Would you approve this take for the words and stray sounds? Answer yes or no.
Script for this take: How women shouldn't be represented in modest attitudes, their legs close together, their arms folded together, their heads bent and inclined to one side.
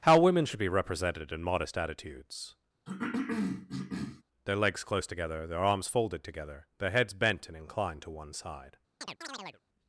no